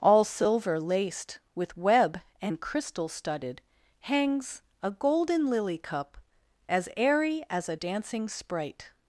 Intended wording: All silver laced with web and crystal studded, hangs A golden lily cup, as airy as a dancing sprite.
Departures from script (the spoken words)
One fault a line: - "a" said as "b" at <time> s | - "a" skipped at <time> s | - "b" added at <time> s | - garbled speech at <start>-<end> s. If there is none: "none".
none